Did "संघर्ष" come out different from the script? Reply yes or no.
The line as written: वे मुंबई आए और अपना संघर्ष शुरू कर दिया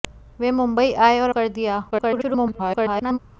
yes